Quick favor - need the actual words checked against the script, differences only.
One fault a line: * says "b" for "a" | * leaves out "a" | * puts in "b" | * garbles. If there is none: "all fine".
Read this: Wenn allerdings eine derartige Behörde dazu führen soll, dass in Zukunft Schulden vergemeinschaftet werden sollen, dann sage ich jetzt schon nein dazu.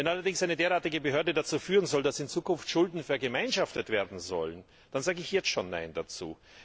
all fine